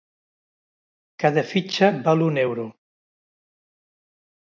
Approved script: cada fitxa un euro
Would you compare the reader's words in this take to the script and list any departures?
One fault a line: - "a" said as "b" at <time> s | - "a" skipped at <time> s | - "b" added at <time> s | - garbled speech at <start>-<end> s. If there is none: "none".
- "val" added at 2.1 s